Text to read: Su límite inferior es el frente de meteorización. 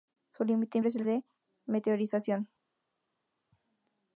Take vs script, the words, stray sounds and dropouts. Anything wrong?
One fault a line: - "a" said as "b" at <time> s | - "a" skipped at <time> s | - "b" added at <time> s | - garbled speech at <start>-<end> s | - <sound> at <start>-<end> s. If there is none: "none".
- "inferior" skipped at 0.8 s
- "frente" skipped at 1.1 s